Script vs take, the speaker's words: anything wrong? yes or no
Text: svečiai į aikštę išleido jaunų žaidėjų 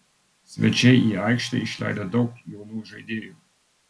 yes